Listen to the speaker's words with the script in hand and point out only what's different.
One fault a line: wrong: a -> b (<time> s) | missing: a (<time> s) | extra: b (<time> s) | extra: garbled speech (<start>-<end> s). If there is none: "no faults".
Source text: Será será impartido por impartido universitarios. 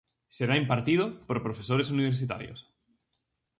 missing: será (0.6 s)
wrong: impartido -> profesores (1.4 s)